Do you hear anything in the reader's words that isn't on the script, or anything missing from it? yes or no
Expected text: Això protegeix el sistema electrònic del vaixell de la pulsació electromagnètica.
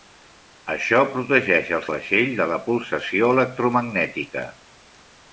yes